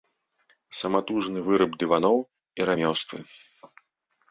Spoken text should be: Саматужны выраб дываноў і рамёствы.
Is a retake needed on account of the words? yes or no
no